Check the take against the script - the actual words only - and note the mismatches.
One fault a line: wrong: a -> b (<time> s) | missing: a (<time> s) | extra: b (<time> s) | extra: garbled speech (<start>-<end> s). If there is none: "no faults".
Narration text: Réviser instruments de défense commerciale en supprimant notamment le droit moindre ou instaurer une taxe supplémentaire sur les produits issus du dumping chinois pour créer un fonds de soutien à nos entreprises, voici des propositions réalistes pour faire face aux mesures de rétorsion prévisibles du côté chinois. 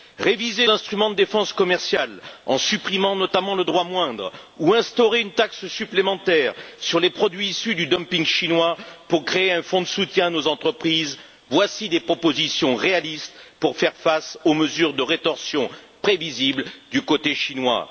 no faults